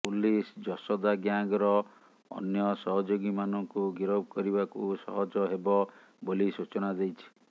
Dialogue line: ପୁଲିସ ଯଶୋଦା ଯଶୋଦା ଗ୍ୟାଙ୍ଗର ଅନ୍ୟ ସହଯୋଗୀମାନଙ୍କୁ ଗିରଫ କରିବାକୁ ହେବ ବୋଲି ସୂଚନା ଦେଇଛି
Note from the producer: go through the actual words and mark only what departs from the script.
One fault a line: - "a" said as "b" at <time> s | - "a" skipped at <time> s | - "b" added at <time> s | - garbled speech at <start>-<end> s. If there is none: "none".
- "ଯଶୋଦା" skipped at 1.1 s
- "ସହଜ" added at 5.0 s